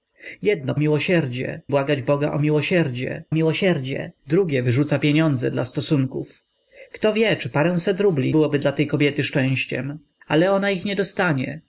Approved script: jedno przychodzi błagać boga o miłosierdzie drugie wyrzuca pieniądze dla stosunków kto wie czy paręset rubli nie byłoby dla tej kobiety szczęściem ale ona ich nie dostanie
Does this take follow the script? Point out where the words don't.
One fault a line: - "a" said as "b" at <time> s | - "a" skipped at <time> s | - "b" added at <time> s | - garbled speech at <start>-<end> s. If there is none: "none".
- "przychodzi" said as "miłosierdzie" at 0.8 s
- "miłosierdzie" added at 3.3 s
- "nie" skipped at 8.3 s